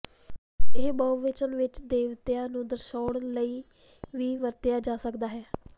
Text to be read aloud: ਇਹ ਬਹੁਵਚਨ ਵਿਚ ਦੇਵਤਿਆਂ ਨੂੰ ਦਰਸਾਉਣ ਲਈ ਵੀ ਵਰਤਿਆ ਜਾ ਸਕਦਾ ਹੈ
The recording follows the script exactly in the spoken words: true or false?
true